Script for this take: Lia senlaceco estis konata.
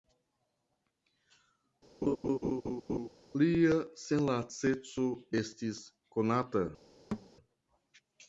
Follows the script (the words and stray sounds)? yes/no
no